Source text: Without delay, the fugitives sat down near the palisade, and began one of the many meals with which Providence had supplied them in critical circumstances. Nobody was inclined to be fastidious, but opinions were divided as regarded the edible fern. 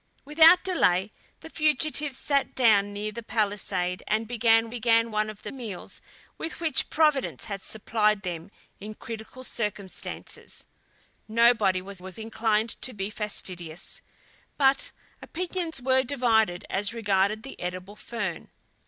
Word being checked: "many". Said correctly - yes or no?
no